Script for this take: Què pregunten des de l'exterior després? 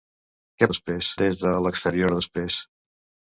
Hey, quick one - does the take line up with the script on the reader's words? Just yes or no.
no